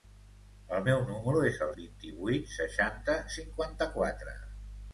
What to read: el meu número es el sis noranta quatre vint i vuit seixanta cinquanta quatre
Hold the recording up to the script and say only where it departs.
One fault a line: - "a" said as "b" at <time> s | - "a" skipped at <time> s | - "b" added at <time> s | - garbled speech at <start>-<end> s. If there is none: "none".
- "sis noranta quatre" skipped at 1.7 s